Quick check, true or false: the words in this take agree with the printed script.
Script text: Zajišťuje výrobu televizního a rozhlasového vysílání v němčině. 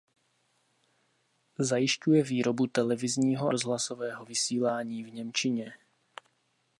false